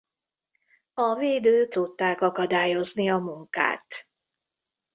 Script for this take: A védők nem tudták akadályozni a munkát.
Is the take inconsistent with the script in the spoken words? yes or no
yes